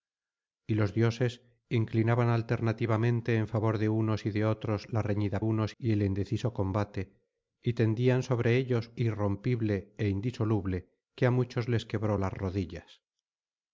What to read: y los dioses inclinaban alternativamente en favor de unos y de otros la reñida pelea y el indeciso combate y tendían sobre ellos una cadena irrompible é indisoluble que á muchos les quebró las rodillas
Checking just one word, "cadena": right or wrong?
wrong